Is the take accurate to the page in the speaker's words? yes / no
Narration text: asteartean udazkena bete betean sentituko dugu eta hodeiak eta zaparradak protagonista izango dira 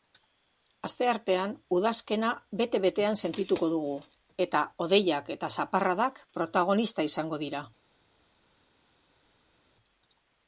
yes